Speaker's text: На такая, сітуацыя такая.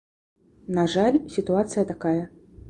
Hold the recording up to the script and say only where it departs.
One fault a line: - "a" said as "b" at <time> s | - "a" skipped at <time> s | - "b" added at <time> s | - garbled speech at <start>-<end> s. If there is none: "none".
- "такая" said as "жаль" at 0.9 s